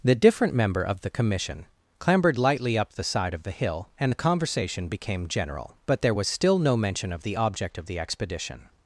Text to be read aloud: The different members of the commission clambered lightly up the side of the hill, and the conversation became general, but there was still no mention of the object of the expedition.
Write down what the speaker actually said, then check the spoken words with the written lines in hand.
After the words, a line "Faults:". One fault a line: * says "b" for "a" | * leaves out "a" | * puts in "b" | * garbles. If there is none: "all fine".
The different member of the commission clambered lightly up the side of the hill, and the conversation became general, but there was still no mention of the object of the expedition.
Faults:
* says "member" for "members"